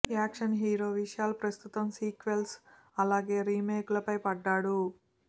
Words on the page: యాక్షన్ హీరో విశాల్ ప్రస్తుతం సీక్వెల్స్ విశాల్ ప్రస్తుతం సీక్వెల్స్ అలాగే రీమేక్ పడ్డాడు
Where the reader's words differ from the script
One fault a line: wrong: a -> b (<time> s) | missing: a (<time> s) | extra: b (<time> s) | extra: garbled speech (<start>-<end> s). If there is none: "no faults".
missing: విశాల్ ప్రస్తుతం సీక్వెల్స్ (2.5 s)
extra: లపై (4.0 s)